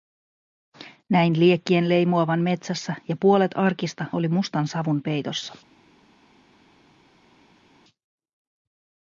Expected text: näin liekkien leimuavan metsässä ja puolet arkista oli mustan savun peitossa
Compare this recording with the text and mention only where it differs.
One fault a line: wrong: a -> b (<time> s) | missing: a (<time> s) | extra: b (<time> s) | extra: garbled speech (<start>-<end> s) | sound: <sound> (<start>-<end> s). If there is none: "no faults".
no faults